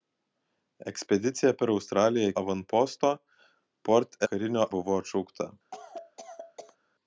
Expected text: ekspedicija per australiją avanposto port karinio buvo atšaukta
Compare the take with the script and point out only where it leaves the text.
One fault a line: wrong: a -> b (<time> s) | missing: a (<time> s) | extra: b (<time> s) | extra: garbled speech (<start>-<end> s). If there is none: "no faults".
no faults